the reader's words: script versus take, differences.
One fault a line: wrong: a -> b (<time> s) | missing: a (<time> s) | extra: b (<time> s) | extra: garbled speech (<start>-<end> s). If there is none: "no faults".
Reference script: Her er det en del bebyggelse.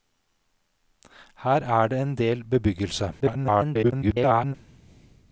extra: garbled speech (3.2-4.5 s)